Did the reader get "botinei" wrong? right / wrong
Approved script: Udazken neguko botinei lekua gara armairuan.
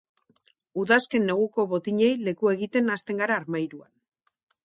right